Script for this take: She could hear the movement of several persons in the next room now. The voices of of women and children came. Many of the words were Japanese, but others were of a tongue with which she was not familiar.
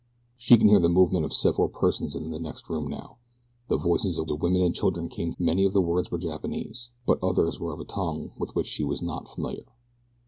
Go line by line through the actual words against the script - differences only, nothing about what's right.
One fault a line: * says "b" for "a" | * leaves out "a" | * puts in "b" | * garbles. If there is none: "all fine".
all fine